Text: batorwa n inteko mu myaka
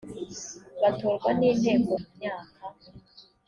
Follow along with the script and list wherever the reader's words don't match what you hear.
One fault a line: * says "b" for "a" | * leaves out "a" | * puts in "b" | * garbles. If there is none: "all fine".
all fine